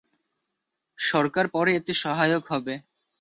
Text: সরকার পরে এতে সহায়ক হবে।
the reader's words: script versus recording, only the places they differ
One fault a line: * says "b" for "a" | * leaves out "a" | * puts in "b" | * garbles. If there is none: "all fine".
all fine